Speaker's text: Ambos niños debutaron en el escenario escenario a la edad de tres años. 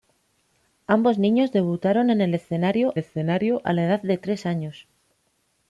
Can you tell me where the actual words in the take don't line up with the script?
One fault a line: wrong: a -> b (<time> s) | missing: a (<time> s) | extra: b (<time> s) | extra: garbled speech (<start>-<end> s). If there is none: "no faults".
no faults